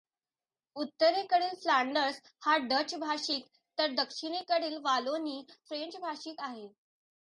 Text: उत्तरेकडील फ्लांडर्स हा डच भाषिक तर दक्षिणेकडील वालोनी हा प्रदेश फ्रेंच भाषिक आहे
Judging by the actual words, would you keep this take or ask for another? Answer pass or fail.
fail